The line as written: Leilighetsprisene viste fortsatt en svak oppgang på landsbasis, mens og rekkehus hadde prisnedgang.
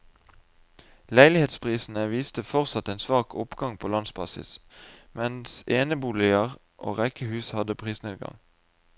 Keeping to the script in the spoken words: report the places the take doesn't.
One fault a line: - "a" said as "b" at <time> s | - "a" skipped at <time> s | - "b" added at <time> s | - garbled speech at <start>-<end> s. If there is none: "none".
- "eneboliger" added at 5.7 s